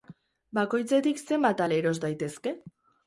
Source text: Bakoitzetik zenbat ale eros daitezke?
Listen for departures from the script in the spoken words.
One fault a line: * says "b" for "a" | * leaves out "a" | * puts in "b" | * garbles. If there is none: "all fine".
all fine